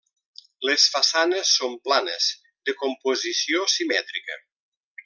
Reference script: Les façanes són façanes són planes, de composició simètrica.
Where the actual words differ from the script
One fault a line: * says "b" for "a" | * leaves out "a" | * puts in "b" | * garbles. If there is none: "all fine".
* leaves out "façanes són"